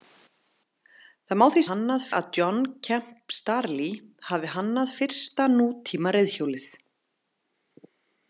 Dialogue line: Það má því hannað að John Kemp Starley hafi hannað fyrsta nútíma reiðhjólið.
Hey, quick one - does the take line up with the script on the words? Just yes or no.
yes